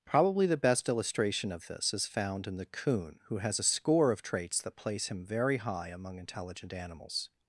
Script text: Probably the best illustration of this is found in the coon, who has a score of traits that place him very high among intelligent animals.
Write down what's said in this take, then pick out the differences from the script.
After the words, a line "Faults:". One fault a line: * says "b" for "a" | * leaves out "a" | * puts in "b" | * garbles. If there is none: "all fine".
Probably the best illustration of this is found in the coon, who has a score of traits that place him very high among intelligent animals.
Faults:
all fine